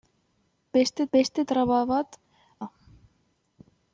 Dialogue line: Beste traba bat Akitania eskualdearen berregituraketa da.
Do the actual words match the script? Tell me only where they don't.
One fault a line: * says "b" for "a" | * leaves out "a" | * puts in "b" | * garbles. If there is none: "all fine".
* puts in "beste"
* leaves out "Akitania eskualdearen berregituraketa"